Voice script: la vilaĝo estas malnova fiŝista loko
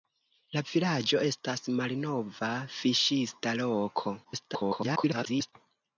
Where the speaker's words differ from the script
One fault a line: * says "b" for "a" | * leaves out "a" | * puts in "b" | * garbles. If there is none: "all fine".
* garbles